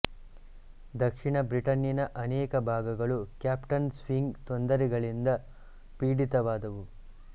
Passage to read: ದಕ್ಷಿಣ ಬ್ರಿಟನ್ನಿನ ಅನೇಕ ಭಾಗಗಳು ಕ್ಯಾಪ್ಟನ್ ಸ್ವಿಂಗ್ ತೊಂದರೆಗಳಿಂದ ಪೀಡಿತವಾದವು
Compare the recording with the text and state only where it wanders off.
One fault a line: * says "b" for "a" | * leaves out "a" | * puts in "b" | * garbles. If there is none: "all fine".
all fine